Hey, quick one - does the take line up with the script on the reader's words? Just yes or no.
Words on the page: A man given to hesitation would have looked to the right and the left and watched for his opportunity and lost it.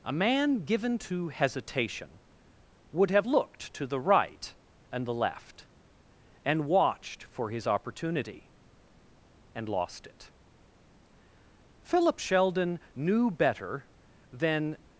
no